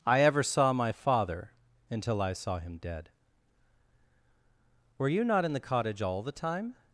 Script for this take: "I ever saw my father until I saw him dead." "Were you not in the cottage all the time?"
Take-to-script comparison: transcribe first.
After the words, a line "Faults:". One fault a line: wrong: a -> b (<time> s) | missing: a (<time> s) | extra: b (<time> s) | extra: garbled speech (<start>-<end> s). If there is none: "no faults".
"I ever saw my father until I saw him dead." "Were you not in the cottage all the time?"
Faults:
no faults